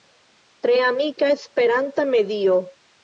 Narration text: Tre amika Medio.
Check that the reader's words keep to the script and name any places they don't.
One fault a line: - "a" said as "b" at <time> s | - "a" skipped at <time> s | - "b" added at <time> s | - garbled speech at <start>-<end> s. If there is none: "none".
- "Esperanta" added at 1.3 s